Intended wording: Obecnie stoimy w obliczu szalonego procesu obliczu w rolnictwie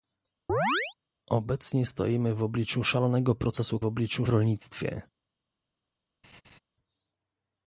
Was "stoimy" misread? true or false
false